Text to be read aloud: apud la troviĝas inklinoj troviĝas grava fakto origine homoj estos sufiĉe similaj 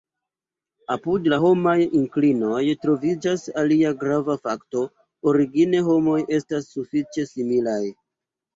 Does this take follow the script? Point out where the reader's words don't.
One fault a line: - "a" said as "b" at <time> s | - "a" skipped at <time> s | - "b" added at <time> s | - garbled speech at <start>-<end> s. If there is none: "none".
- "troviĝas" said as "homaj" at 1.4 s
- "alia" added at 3.6 s
- "estos" said as "estas" at 6.4 s